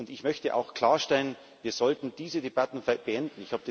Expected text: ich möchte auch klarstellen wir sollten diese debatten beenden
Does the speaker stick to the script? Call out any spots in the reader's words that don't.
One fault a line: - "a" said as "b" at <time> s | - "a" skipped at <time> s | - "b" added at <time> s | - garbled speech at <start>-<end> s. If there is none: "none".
none